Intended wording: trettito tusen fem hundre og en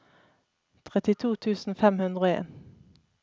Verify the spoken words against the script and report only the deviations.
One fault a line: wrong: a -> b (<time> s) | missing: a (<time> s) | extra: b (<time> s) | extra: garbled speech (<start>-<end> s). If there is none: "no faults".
no faults